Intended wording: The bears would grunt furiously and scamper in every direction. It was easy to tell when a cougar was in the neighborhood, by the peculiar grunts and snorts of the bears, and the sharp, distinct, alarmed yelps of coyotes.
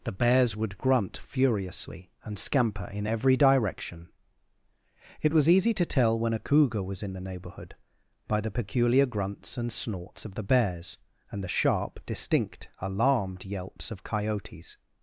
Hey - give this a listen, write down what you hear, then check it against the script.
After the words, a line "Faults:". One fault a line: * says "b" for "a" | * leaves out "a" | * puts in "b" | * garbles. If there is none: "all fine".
The bears would grunt furiously and scamper in every direction. It was easy to tell when a cougar was in the neighborhood, by the peculiar grunts and snorts of the bears, and the sharp, distinct, alarmed yelps of coyotes.
Faults:
all fine